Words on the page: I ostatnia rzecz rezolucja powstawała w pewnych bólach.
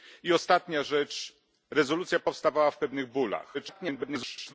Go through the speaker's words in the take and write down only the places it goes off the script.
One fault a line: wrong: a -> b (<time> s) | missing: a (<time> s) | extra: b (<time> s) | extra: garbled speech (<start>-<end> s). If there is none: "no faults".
extra: garbled speech (3.5-4.5 s)